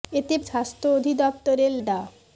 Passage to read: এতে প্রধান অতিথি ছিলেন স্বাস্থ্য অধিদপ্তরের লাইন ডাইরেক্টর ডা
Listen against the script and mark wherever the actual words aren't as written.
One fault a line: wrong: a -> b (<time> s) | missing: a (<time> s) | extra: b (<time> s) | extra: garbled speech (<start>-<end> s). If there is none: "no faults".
missing: প্রধান অতিথি ছিলেন (0.3 s)
missing: লাইন ডাইরেক্টর (1.7 s)